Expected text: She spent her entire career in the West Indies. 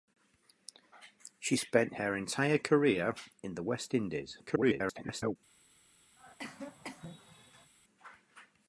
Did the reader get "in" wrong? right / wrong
right